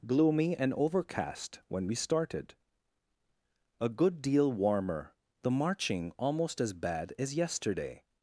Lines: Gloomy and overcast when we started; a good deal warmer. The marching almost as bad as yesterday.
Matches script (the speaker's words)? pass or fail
pass